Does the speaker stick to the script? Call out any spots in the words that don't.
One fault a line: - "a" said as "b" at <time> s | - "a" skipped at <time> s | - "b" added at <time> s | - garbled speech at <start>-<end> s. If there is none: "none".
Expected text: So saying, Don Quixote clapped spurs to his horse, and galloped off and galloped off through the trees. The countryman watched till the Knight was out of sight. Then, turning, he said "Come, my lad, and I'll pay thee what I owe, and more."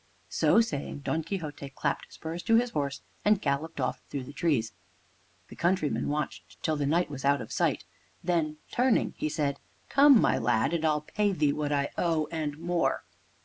- "and galloped off" skipped at 4.0 s